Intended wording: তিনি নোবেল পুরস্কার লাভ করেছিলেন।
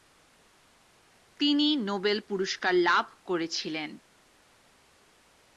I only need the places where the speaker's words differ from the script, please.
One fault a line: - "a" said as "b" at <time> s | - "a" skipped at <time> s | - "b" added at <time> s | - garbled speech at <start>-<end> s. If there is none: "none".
none